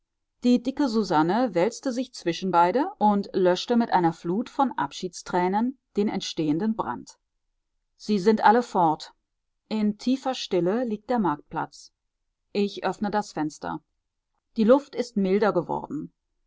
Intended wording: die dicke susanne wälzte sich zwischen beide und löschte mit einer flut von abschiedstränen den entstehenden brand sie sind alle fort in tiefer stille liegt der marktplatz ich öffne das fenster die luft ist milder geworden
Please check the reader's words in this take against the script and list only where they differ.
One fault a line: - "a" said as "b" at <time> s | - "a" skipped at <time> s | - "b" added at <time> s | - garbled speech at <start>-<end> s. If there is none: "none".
none